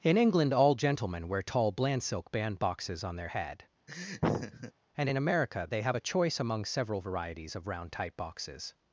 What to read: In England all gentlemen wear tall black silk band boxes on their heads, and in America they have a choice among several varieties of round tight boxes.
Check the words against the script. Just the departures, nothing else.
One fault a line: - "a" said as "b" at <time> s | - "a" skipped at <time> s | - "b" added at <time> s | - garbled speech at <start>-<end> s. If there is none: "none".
- "black" said as "bland" at 1.7 s
- "heads" said as "head" at 3.2 s